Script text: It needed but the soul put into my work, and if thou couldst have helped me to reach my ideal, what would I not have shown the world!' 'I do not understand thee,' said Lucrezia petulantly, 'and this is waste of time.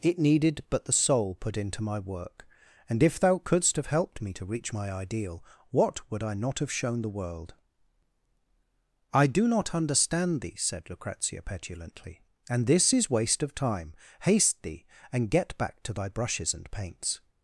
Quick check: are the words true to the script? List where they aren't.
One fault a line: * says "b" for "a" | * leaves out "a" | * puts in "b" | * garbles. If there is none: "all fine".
* puts in "Haste thee and get back to thy brushes and paints"